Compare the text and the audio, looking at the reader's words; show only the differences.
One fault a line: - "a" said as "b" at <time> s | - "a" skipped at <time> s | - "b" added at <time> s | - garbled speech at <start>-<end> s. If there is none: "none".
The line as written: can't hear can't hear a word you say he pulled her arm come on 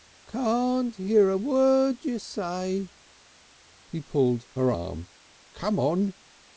- "can't hear" skipped at 1.3 s